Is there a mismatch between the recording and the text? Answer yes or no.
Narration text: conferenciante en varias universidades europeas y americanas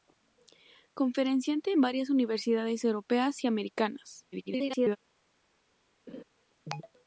yes